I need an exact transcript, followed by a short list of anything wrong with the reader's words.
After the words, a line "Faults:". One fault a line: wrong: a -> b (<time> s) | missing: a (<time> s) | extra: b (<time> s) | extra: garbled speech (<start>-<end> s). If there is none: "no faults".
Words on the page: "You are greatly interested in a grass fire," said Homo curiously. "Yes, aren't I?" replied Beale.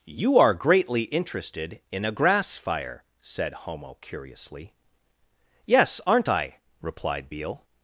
"You are greatly interested in a grass fire," said Homo curiously. "Yes, aren't I?" replied Beale.
Faults:
no faults